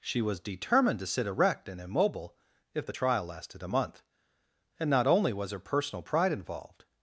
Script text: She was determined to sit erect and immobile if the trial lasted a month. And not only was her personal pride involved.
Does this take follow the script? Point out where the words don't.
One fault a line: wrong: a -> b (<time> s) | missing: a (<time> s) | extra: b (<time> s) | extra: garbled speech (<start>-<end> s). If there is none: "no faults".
no faults